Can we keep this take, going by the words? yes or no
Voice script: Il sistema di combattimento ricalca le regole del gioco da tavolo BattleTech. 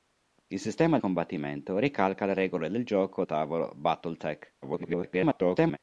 no